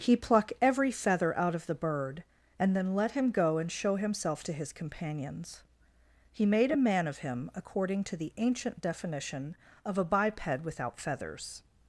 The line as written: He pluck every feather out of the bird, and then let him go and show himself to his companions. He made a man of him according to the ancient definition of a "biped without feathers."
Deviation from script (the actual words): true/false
false